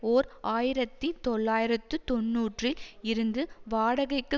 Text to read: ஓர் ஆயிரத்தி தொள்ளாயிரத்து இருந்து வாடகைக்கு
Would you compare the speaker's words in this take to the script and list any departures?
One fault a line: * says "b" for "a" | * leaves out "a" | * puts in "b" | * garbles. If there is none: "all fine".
* puts in "தொன்னூறில்"